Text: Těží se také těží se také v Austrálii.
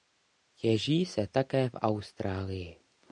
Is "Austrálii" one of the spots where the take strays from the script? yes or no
no